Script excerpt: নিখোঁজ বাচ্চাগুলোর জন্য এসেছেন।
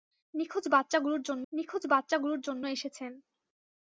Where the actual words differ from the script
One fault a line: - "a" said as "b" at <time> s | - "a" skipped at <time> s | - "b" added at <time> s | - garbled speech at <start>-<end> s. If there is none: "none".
- "নিখোঁজ বাচ্চাগুলোর জন্য" added at 1.5 s